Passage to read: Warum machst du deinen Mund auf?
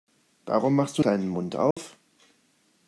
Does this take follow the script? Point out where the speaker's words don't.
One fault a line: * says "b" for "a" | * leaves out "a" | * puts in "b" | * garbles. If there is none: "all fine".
all fine